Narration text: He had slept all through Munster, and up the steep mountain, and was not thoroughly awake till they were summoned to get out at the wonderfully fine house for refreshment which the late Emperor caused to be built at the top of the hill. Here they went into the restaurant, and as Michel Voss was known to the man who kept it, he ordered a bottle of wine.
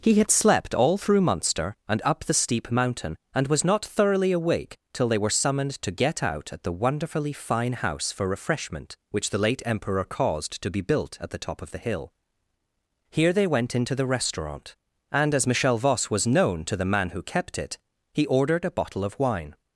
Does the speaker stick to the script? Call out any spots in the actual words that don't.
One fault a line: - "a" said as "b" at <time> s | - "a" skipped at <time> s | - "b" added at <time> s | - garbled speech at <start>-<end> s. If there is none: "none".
none